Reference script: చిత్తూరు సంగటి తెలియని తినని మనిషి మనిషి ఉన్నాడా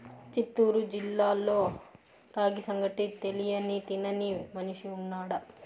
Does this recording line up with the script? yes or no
no